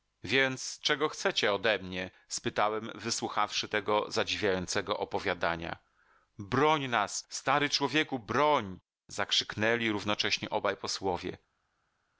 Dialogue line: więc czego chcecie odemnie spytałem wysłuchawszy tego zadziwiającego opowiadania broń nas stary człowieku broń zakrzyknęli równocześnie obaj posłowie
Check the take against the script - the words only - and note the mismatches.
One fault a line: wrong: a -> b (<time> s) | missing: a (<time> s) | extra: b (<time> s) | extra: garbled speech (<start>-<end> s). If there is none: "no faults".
no faults